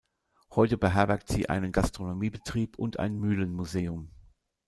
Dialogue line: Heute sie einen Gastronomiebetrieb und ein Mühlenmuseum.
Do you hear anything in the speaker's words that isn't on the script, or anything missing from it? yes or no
yes